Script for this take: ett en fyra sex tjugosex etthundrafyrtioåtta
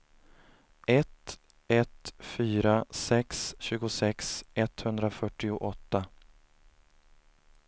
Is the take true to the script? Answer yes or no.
no